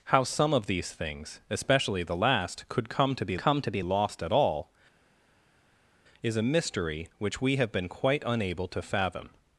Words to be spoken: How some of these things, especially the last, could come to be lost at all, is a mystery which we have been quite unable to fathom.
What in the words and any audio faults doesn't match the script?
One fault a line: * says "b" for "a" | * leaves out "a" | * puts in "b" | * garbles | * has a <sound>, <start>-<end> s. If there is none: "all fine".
* puts in "come to be"